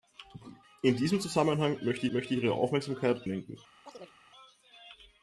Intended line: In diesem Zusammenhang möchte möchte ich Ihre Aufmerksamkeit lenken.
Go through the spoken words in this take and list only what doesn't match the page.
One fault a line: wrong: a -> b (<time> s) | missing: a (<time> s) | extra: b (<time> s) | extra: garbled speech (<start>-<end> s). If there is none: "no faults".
no faults